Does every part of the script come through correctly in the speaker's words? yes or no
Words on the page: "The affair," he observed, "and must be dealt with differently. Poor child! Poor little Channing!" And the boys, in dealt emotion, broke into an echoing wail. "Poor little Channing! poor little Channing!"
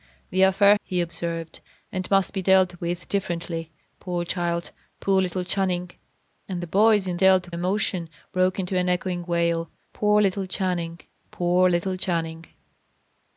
yes